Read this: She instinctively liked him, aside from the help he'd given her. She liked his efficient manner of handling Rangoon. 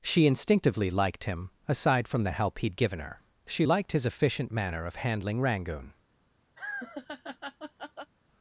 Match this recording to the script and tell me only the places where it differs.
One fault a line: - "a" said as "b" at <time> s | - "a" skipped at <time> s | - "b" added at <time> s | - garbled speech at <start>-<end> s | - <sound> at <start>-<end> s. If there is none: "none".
- laugh at 6.6-8.1 s